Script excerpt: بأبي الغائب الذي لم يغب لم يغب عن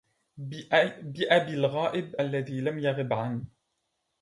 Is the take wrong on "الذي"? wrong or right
right